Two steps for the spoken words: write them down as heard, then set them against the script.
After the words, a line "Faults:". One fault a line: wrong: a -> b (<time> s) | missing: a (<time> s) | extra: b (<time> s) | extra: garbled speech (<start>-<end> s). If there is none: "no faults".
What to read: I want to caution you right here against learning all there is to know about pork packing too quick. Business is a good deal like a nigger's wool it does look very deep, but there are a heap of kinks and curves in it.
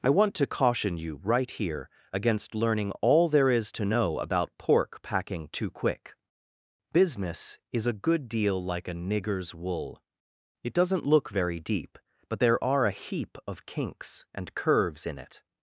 I want to caution you right here against learning all there is to know about pork packing too quick. Business is a good deal like a nigger's wool it doesn't look very deep, but there are a heap of kinks and curves in it.
Faults:
wrong: does -> doesn't (10.7 s)